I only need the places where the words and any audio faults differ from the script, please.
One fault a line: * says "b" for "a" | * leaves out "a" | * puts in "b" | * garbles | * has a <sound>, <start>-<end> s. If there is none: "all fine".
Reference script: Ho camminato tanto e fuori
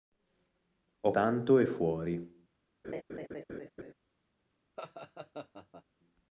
* leaves out "camminato"
* has a laugh, 2.8-3.9 s
* has a laugh, 4.8-5.8 s